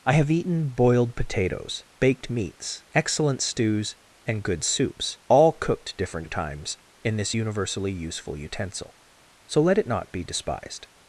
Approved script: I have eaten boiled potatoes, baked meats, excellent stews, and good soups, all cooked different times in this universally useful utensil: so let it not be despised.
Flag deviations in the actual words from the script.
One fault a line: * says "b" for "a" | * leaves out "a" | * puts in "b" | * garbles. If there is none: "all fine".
all fine